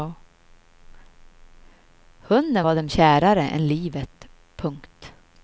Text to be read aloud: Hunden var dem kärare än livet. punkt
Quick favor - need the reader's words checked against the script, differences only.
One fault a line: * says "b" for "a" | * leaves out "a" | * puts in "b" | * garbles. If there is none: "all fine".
all fine